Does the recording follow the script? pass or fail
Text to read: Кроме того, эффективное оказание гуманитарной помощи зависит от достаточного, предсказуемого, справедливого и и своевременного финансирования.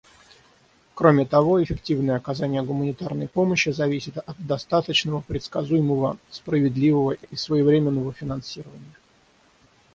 pass